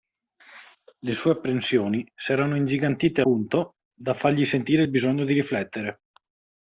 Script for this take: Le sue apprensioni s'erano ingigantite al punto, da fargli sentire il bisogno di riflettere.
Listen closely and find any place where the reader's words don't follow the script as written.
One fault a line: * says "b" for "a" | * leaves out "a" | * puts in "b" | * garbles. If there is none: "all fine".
* leaves out "al"